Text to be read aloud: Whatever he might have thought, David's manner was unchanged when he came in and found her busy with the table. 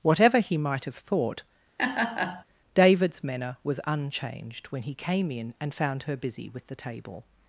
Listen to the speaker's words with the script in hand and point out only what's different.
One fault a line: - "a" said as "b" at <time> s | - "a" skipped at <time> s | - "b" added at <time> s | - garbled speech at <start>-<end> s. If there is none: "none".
none